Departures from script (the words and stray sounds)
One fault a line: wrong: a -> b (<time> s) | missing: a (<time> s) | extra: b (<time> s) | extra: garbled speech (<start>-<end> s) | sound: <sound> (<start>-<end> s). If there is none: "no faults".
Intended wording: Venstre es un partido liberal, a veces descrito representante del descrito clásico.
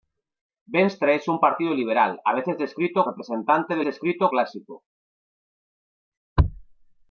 no faults